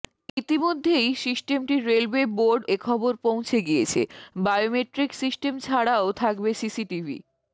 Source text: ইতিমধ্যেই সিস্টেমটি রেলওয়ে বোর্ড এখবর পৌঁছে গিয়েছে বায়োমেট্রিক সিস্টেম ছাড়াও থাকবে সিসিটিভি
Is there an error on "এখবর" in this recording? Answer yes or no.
no